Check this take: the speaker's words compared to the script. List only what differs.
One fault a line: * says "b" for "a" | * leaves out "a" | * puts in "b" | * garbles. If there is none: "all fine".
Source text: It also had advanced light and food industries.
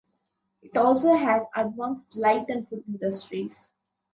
all fine